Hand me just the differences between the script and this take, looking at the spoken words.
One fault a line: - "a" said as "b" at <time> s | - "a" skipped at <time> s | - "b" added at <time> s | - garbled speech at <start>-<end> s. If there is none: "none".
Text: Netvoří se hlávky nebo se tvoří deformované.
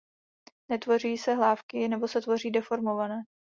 none